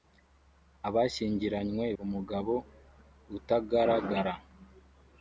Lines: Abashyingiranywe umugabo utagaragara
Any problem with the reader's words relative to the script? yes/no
no